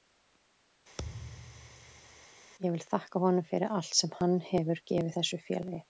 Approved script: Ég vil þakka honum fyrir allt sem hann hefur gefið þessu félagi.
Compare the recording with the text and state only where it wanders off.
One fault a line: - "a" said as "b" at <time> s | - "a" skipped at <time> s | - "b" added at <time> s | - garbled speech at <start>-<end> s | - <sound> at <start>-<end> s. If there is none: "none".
- thud at 1.0-2.3 s